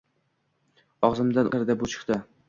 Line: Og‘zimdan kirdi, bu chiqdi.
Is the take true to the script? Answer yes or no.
yes